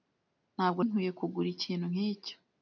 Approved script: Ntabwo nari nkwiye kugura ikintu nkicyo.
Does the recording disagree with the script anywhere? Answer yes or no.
yes